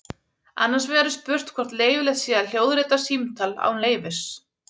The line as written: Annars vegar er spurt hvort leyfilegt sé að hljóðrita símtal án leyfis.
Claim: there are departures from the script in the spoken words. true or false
false